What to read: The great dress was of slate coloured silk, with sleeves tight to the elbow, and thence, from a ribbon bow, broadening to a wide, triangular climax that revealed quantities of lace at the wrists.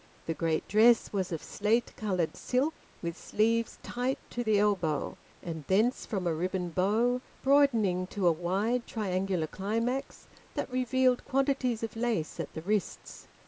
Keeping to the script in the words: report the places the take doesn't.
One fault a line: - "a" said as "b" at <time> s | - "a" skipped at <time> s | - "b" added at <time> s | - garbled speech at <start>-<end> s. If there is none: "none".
none